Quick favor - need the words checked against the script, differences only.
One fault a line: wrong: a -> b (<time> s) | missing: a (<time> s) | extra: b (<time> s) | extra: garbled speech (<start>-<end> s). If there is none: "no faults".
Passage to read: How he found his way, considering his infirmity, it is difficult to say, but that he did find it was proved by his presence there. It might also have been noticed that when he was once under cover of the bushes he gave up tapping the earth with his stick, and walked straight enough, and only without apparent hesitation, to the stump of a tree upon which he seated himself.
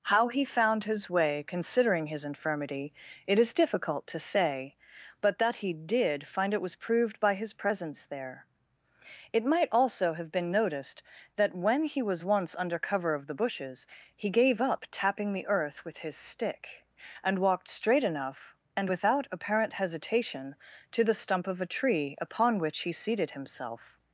missing: only (18.9 s)